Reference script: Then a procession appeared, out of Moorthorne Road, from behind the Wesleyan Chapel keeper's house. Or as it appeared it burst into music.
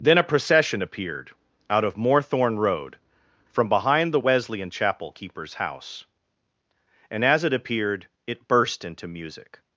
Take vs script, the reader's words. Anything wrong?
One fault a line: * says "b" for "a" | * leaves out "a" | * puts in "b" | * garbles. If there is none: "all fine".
* says "And" for "Or"